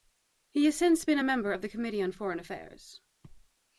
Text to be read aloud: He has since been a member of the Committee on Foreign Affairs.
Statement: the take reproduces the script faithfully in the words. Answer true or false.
true